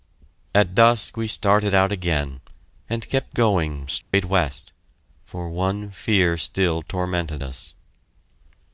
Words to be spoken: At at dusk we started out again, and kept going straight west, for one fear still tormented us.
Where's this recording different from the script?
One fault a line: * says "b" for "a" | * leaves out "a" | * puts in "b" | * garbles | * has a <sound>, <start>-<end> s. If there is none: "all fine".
* leaves out "at"
* has a dropout, 4.0-4.1 s